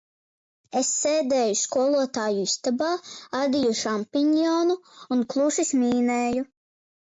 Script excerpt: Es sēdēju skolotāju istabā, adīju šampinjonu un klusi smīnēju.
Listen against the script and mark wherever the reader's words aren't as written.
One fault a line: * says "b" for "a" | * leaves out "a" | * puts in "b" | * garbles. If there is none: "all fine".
all fine